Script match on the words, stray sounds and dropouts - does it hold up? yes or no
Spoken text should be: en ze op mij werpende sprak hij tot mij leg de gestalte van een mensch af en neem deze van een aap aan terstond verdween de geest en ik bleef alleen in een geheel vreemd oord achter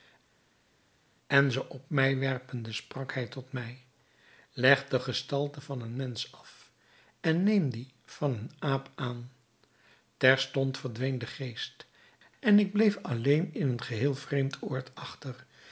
no